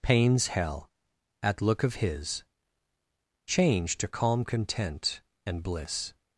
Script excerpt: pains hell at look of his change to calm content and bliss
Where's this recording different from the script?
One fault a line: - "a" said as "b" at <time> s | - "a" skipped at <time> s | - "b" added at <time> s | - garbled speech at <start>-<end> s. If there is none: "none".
none